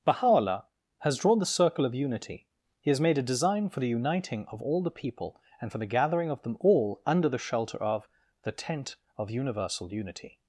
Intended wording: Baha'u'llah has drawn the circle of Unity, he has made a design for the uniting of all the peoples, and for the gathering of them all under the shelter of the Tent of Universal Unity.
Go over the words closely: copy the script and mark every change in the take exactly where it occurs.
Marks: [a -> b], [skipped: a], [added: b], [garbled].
Baha'u'llah has drawn the circle of Unity, he has made a design for the uniting of all the [peoples, -> people] and for the gathering of them all under the shelter of the Tent of Universal Unity.